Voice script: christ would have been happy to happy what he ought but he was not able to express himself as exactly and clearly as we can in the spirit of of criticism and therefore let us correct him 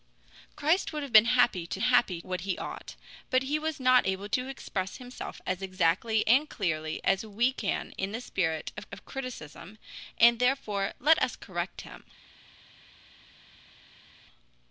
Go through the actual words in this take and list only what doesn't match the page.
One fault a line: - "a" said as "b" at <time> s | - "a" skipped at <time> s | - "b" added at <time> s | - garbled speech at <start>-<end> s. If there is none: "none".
none